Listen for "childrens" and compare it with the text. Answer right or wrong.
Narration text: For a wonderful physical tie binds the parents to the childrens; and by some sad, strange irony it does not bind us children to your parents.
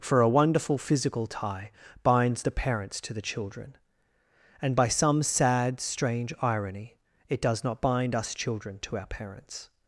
wrong